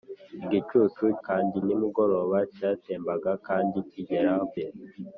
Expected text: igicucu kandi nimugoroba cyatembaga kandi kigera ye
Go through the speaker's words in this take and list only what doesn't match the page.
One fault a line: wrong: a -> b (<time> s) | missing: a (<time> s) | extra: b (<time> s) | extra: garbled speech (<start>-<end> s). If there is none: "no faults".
no faults